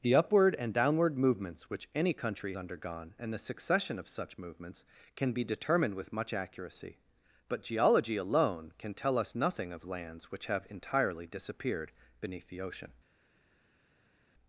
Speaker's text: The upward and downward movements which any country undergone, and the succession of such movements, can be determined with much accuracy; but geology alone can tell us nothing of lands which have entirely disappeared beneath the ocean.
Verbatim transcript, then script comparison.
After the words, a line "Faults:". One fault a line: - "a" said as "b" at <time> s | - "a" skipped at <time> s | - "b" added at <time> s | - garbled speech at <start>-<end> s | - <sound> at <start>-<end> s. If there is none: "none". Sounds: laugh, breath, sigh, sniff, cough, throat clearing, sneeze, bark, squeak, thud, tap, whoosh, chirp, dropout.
The upward and downward movements which any country undergone, and the succession of such movements, can be determined with much accuracy; but geology alone can tell us nothing of lands which have entirely disappeared beneath the ocean.
Faults:
none